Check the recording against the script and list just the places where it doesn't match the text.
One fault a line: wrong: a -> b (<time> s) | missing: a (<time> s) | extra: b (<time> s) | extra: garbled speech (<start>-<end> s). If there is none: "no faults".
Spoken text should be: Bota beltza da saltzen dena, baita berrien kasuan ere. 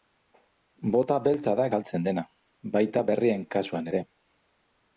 no faults